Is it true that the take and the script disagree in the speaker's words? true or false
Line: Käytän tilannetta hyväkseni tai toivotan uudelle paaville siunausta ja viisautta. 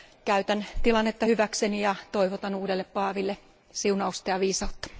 true